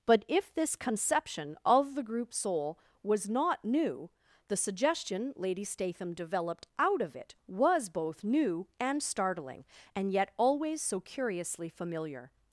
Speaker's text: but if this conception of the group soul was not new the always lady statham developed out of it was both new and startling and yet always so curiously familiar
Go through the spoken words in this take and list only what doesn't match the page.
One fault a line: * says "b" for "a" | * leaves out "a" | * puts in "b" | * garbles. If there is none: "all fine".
* says "suggestion" for "always"